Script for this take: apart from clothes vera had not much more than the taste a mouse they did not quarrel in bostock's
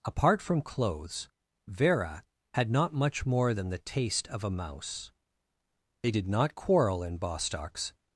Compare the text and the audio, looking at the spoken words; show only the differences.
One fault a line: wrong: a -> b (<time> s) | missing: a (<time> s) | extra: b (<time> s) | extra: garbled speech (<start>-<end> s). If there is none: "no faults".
extra: of (4.3 s)